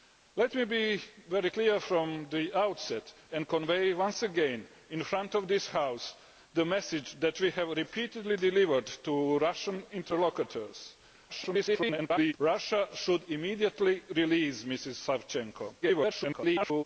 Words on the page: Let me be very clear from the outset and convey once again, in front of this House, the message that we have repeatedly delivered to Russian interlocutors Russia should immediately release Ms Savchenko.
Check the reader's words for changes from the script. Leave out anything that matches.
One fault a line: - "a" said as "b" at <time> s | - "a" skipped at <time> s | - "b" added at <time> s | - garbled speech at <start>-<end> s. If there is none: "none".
- garbled speech at 11.3-12.3 s
- garbled speech at 15.8-16.8 s